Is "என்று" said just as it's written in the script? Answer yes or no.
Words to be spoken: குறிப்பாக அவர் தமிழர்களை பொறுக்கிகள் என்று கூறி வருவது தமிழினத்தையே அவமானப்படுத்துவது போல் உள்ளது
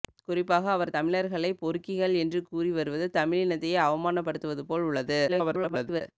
yes